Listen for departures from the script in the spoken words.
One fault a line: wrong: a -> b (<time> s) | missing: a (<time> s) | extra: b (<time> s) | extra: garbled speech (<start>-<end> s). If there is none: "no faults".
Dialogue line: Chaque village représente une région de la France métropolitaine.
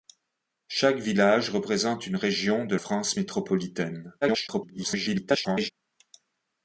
missing: la (2.8 s)
extra: garbled speech (4.2-5.7 s)